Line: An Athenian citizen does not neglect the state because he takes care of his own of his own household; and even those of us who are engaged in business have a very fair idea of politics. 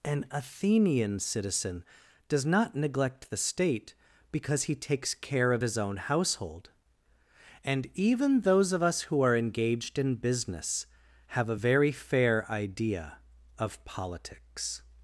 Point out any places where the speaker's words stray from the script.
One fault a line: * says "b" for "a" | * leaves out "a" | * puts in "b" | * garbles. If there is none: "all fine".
* leaves out "of his own"